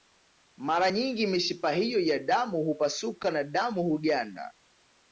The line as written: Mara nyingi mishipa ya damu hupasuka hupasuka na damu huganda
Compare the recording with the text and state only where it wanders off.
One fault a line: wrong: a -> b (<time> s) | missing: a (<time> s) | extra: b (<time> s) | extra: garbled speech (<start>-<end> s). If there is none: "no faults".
extra: hiyo (1.7 s)
missing: hupasuka (3.3 s)